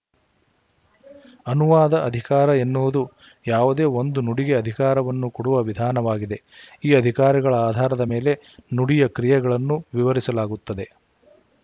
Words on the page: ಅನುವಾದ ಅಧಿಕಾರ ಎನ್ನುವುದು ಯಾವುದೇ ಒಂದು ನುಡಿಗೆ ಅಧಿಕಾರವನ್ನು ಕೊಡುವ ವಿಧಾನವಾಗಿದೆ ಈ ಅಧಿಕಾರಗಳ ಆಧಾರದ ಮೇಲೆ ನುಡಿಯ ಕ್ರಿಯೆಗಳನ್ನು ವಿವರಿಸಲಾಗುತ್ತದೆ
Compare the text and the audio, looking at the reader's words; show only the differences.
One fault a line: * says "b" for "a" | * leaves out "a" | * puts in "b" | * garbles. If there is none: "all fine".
all fine